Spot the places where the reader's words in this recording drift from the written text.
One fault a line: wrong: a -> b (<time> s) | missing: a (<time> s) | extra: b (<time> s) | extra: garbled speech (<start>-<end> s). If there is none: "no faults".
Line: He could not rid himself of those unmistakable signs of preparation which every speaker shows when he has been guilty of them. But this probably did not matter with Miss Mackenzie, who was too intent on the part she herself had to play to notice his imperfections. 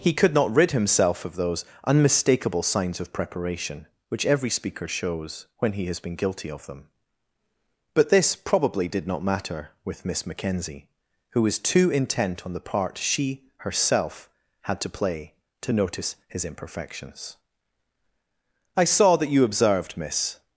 extra: I saw that you observed Miss (18.8 s)